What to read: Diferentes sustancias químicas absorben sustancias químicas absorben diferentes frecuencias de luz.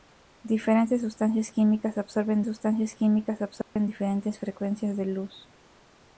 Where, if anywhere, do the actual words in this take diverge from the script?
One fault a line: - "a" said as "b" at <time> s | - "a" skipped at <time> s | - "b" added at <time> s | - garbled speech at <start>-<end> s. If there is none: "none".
none